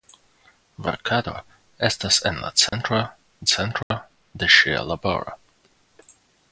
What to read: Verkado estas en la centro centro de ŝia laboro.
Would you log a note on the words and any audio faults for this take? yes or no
yes